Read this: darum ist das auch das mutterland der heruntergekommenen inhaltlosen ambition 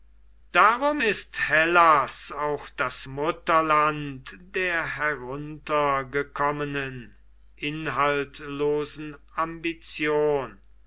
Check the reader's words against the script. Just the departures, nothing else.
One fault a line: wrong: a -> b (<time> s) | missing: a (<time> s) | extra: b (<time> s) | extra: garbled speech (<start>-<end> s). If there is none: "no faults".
wrong: das -> hellas (1.5 s)